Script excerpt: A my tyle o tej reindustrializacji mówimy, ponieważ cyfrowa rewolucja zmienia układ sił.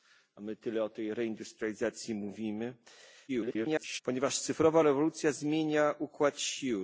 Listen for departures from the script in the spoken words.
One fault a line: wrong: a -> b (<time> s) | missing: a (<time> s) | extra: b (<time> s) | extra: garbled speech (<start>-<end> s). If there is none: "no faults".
extra: garbled speech (3.3-4.0 s)